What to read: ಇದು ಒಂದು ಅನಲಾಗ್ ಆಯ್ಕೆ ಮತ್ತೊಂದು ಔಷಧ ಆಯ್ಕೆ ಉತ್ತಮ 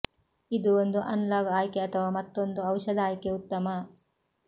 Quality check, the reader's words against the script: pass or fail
fail